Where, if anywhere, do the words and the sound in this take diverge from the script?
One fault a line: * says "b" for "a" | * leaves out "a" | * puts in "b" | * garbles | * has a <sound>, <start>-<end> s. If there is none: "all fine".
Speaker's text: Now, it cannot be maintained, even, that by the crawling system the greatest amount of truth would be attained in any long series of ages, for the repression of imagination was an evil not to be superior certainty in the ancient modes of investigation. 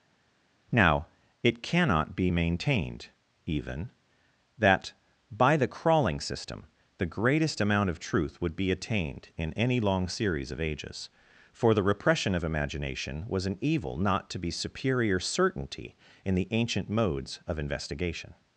all fine